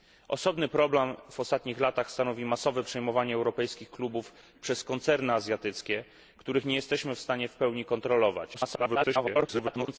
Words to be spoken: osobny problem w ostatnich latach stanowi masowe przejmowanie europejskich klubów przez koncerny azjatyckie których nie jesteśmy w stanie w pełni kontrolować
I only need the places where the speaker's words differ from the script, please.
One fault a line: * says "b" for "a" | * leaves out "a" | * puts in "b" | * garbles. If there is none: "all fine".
* garbles